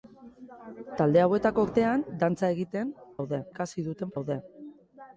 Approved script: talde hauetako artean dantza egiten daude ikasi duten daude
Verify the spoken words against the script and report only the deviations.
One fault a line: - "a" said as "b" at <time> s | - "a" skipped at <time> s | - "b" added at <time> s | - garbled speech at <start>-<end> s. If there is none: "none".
none